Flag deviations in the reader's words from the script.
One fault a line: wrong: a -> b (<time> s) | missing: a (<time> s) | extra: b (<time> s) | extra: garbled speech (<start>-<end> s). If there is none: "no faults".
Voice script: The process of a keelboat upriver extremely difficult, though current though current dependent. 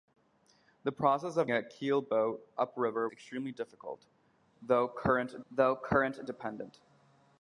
no faults